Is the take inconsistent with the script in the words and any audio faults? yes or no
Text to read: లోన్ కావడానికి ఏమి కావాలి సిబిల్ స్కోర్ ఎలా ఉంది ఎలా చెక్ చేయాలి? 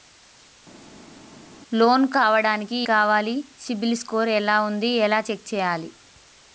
yes